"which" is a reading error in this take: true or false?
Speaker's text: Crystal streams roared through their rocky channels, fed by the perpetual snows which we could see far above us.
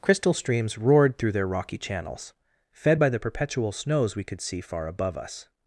true